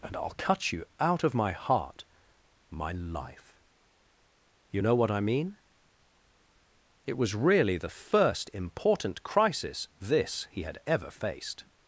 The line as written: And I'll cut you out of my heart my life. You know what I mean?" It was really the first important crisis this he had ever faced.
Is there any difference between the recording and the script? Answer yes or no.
no